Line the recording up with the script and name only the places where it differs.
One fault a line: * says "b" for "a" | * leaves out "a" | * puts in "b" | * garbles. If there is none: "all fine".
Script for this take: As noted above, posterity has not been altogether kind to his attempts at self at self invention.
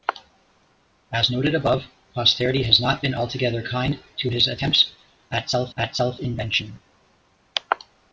all fine